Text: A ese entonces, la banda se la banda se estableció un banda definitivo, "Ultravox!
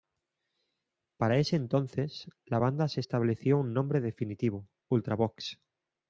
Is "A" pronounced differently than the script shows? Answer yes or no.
yes